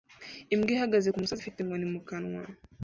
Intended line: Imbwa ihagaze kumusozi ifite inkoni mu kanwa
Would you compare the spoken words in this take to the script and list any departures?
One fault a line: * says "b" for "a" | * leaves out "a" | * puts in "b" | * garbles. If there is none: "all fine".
all fine